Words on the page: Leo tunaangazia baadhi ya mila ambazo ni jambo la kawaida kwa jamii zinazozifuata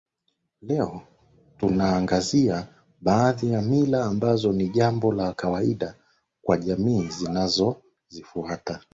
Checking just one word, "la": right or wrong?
right